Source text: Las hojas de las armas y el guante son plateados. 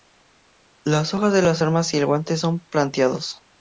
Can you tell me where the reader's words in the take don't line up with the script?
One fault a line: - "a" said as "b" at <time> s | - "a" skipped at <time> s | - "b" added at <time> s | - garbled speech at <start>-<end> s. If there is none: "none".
none